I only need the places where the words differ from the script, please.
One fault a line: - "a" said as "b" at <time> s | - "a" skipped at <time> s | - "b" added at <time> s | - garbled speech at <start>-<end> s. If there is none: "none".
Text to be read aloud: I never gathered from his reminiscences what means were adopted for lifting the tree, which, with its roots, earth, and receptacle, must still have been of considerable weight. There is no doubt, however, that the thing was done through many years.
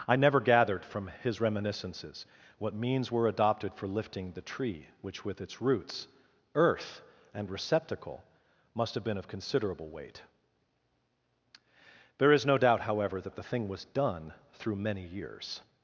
- "still" skipped at 8.9 s